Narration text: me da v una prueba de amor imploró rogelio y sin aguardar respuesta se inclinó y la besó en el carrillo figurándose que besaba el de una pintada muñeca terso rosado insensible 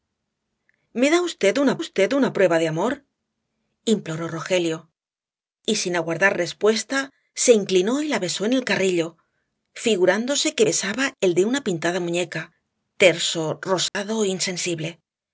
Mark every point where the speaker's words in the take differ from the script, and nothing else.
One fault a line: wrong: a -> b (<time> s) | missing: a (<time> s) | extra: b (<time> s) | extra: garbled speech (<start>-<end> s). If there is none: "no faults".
extra: v una (1.8 s)